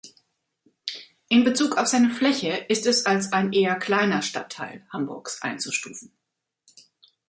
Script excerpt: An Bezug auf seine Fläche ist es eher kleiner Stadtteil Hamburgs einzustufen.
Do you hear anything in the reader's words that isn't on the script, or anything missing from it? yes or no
yes